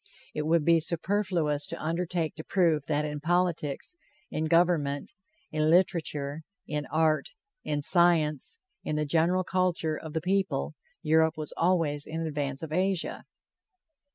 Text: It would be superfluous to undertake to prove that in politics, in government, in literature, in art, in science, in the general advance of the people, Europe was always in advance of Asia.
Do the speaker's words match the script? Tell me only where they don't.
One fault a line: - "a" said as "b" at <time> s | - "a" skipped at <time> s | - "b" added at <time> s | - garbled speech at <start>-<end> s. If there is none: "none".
- "advance" said as "culture" at 9.4 s